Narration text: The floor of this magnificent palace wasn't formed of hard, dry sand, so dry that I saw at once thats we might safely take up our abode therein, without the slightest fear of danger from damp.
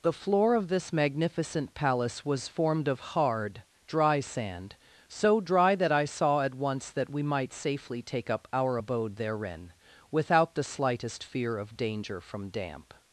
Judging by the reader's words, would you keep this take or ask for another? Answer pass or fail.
fail